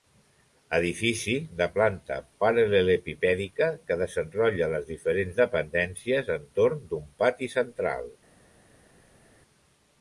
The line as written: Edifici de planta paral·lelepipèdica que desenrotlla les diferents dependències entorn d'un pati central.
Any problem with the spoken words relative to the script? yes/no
no